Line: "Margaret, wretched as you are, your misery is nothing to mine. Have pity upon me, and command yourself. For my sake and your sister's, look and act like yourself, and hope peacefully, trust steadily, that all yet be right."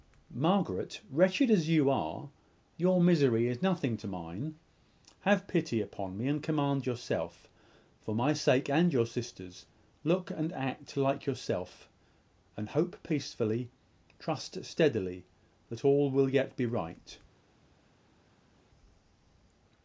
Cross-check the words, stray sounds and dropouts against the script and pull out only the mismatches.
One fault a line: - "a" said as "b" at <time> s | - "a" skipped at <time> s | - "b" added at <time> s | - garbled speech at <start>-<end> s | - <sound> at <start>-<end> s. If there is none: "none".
- "will" added at 16.1 s